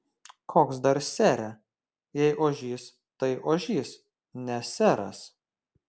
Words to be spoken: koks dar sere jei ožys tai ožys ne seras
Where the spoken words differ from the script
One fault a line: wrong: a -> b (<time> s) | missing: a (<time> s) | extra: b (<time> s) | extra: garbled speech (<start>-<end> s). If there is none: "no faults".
no faults